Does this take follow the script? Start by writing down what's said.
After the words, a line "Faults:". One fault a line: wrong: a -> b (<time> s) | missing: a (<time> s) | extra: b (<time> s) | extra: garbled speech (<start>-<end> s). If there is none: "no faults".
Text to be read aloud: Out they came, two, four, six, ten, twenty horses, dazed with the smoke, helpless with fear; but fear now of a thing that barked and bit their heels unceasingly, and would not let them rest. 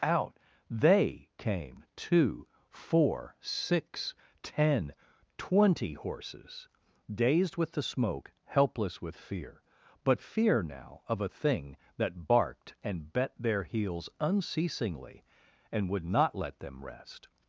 Out they came, two, four, six, ten, twenty horses, dazed with the smoke, helpless with fear; but fear now of a thing that barked and bet their heels unceasingly, and would not let them rest.
Faults:
wrong: bit -> bet (13.1 s)